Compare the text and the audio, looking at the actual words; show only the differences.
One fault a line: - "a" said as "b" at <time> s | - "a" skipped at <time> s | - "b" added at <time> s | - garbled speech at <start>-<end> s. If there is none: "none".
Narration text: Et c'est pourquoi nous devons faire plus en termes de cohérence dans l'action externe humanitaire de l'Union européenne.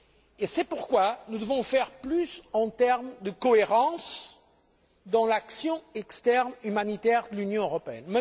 none